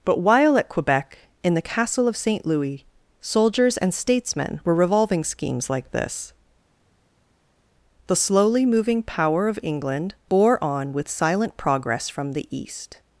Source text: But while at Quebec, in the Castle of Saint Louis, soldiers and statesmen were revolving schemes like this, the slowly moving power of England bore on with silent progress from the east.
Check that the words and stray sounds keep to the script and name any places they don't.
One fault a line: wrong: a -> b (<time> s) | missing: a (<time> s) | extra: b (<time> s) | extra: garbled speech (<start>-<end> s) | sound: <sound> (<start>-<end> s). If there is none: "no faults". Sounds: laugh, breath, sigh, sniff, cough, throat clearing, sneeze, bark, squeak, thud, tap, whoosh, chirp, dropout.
no faults